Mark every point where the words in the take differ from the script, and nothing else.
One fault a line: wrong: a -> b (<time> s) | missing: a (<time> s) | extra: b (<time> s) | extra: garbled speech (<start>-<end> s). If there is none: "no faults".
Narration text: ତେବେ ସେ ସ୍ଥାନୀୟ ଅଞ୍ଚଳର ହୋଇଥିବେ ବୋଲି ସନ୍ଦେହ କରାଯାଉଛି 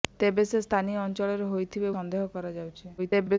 missing: ବୋଲି (1.9 s)
extra: garbled speech (3.0-3.4 s)